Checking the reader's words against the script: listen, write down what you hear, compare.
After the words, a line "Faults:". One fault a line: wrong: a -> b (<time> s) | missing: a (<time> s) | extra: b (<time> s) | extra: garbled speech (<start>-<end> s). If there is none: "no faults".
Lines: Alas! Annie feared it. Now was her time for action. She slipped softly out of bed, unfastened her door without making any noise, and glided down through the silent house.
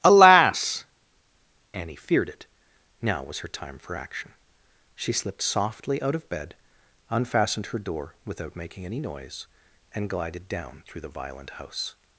Alas! Annie feared it. Now was her time for action. She slipped softly out of bed, unfastened her door without making any noise, and glided down through the violent house.
Faults:
wrong: silent -> violent (11.1 s)